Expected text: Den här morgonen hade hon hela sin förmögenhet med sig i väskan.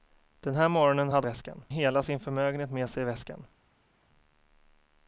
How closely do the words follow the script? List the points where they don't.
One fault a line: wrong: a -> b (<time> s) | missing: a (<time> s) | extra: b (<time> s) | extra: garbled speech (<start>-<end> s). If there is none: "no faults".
wrong: hon -> väskan (1.2 s)